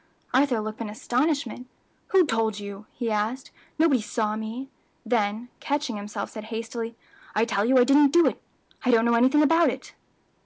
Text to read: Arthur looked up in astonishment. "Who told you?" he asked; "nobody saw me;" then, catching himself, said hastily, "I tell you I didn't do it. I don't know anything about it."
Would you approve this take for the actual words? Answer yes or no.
no